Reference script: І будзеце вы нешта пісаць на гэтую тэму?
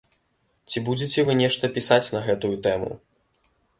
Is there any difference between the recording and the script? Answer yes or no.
yes